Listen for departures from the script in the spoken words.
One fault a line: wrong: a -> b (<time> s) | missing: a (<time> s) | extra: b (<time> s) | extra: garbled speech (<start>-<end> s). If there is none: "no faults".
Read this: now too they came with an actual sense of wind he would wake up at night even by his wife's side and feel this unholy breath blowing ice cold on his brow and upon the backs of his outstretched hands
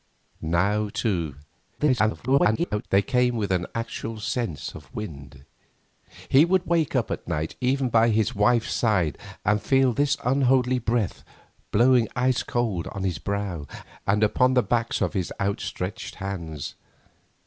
extra: garbled speech (1.8-2.8 s)